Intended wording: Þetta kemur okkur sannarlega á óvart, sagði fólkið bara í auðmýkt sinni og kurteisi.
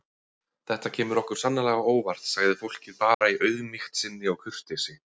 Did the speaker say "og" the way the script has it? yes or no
yes